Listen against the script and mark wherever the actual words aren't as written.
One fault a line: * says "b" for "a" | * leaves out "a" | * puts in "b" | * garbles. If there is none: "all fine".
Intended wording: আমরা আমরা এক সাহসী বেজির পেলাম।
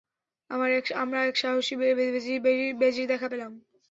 * leaves out "আমরা"
* puts in "দেখা"